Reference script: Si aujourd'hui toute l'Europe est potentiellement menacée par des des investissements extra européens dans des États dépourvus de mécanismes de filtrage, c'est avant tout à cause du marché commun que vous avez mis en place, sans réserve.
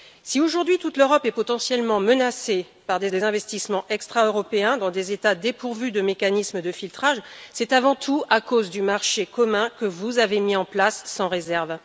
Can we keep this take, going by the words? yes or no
yes